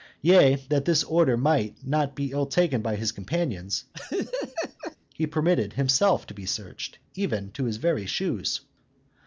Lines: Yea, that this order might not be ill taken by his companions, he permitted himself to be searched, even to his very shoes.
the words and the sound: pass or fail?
fail